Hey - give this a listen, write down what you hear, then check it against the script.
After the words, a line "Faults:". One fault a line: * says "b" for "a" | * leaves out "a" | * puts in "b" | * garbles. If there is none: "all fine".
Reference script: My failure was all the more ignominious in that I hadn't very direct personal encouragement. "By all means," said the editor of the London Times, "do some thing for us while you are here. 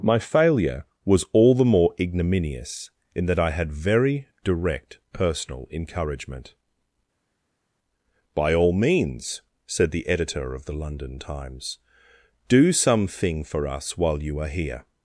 My failure was all the more ignominious in that I had very direct personal encouragement. "By all means," said the editor of the London Times, "do some thing for us while you are here.
Faults:
* says "had" for "hadn't"